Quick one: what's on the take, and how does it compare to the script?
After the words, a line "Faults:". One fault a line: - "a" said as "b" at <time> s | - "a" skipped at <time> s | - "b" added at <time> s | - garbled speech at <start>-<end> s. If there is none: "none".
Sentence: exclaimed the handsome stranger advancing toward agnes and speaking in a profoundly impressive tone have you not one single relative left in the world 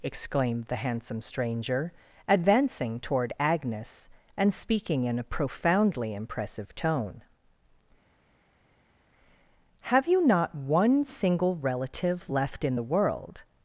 exclaimed the handsome stranger advancing toward agnes and speaking in a profoundly impressive tone have you not one single relative left in the world
Faults:
none